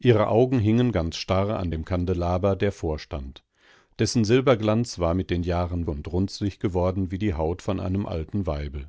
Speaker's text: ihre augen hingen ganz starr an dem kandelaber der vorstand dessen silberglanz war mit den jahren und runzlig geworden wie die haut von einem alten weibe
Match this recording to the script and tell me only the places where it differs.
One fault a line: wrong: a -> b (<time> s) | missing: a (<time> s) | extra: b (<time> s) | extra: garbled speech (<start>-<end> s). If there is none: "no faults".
no faults